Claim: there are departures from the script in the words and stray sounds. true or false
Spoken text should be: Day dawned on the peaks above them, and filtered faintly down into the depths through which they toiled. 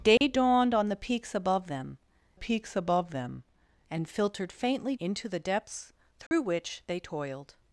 true